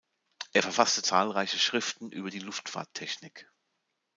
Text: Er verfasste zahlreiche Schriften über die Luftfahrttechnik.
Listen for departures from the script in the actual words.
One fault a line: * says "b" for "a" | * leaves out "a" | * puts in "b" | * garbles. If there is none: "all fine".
all fine